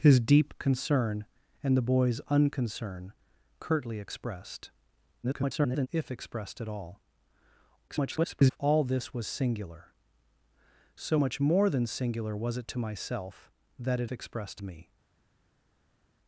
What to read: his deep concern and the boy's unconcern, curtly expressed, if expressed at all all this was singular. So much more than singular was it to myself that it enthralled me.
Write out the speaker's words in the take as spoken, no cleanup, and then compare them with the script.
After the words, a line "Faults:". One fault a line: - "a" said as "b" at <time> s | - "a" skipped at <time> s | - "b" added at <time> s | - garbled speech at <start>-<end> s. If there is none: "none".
his deep concern and the boy's unconcern, curtly expressed, [garbled] if expressed at all [garbled] all this was singular. So much more than singular was it to myself that it expressed me.
Faults:
- garbled speech at 5.2-5.9 s
- garbled speech at 7.9-8.6 s
- "enthralled" said as "expressed" at 14.1 s